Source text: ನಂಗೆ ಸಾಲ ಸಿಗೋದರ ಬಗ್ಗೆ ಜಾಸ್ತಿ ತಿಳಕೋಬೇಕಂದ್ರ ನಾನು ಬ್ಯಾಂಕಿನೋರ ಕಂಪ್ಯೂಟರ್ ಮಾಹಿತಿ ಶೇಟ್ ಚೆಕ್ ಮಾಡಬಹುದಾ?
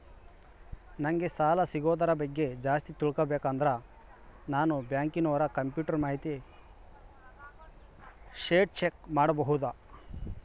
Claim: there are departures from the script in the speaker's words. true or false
false